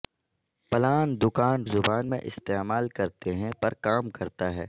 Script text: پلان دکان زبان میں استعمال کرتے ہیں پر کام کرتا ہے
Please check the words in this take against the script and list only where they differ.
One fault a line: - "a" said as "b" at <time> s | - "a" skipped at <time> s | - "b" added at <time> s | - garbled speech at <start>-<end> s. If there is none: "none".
none